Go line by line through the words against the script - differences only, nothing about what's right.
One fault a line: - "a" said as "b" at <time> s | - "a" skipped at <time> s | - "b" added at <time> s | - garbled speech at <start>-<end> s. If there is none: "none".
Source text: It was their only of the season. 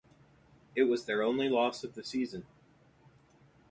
- "loss" added at 1.5 s